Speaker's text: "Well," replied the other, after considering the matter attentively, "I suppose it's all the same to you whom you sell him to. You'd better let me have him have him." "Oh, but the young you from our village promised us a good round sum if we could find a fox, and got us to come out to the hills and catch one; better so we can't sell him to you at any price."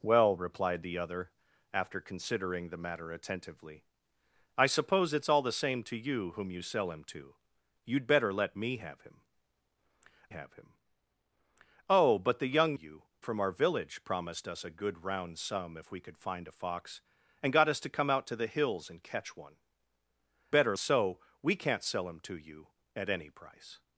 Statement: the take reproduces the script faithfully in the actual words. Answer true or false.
true